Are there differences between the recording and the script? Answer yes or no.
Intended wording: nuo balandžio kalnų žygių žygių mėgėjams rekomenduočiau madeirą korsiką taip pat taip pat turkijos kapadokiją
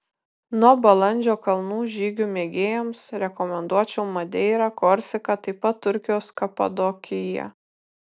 yes